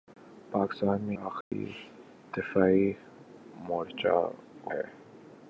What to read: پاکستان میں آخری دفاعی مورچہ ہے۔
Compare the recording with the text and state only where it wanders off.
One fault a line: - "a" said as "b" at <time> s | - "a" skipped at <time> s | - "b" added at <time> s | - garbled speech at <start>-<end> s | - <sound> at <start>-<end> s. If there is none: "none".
- dropout at 1.4-1.5 s